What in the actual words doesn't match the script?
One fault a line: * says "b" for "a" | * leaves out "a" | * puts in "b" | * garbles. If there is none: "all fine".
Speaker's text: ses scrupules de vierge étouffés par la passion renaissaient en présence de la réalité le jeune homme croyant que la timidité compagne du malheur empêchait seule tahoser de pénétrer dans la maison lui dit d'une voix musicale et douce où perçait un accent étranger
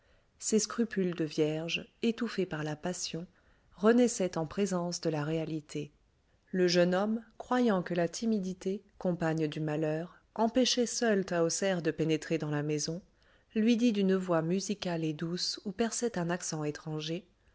all fine